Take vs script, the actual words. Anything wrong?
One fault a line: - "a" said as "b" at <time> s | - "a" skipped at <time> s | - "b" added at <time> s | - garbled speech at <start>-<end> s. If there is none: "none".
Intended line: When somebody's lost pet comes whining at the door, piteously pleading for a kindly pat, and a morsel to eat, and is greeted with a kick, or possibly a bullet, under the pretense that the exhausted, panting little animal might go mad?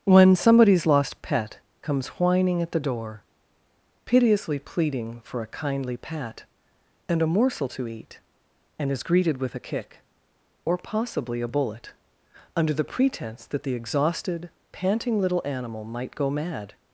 none